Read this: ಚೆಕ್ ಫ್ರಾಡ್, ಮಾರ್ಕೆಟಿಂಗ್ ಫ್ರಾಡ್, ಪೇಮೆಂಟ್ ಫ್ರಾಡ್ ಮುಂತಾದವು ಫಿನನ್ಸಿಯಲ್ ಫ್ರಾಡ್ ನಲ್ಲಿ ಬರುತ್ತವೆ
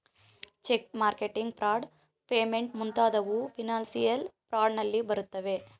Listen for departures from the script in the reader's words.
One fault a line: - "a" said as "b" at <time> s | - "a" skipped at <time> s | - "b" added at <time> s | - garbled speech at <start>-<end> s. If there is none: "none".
- "ಫ್ರಾಡ್" skipped at 0.9 s
- "ಫ್ರಾಡ್" skipped at 2.7 s